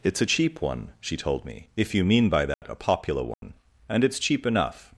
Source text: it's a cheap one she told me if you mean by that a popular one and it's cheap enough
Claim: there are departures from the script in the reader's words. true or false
false